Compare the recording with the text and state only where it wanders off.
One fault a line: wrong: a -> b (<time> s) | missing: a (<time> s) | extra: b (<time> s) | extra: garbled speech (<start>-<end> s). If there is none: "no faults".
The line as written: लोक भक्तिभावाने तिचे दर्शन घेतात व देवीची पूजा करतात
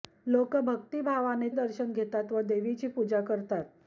missing: तिचे (1.5 s)